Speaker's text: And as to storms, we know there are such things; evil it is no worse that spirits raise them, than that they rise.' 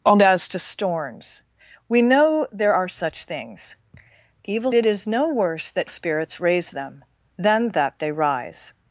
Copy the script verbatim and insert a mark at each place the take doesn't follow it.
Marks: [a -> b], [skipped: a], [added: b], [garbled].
And as to storms, we know there are such things; evil it is no worse that spirits raise them, than that they rise.'